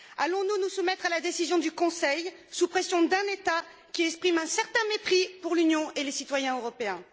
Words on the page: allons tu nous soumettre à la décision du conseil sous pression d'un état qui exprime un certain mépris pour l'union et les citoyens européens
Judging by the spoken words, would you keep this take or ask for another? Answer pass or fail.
fail